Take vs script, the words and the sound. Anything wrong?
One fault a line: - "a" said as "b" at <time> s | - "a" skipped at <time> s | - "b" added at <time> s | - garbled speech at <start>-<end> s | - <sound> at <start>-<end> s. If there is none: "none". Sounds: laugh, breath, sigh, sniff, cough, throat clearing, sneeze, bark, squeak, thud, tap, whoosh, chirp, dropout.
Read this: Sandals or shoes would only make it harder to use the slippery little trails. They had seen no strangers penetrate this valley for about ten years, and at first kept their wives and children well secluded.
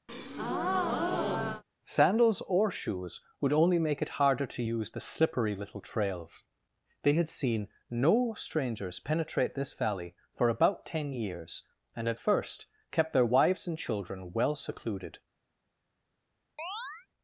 - breath at 0.1-1.6 s
- chirp at 16.6-17.1 s